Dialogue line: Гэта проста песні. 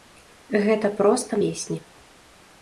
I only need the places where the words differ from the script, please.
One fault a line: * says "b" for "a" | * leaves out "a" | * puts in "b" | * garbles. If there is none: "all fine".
all fine